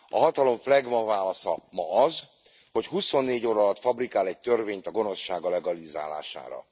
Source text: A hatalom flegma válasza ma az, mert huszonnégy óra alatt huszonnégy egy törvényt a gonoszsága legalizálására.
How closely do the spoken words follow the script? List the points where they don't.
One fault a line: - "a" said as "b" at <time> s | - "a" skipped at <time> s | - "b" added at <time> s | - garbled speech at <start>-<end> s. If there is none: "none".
- "mert" said as "hogy" at 2.7 s
- "huszonnégy" said as "fabrikál" at 3.8 s